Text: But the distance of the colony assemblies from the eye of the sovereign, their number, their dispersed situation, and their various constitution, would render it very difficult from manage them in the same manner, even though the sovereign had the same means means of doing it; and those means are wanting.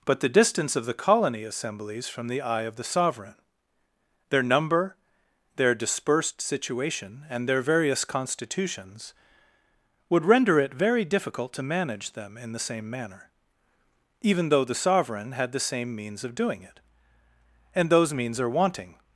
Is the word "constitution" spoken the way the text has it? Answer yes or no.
no